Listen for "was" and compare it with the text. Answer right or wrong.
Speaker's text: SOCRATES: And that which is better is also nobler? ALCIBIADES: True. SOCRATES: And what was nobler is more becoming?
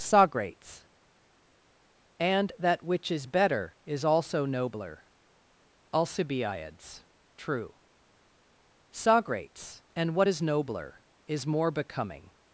wrong